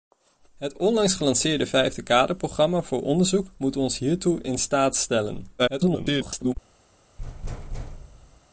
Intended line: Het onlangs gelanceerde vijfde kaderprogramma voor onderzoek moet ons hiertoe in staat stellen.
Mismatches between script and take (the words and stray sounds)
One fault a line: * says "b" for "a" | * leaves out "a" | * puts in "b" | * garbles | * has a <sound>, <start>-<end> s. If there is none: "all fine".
* garbles
* has a thud, 7.2-8.4 s